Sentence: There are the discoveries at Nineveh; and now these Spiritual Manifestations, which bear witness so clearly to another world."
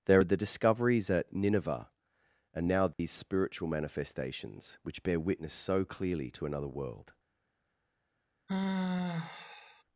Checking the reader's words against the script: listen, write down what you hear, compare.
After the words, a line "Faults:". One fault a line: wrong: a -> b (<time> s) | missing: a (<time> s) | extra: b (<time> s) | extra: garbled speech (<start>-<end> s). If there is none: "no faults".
There are the discoveries at Nineveh; and now these Spiritual Manifestations, which bear witness so clearly to another world."
Faults:
no faults